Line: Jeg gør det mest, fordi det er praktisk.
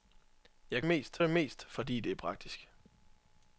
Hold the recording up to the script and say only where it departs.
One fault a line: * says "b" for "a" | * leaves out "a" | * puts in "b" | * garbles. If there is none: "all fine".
* says "mest" for "gør"